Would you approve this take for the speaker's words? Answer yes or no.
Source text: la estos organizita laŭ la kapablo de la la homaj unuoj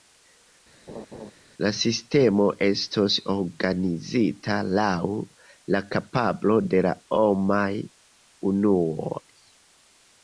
no